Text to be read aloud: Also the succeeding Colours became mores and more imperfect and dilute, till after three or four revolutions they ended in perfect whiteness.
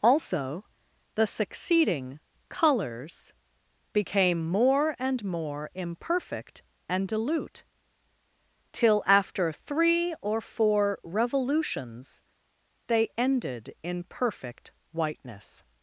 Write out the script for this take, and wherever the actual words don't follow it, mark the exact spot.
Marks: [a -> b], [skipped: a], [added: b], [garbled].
Also the succeeding Colours became [mores -> more] and more imperfect and dilute, till after three or four revolutions they ended in perfect whiteness.